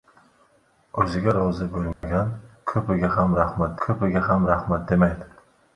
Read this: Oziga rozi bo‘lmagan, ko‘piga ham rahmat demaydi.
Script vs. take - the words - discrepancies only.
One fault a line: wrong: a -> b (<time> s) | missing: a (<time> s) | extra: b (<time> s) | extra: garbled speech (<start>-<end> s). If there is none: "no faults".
extra: ko‘piga ham rahmat (3.9 s)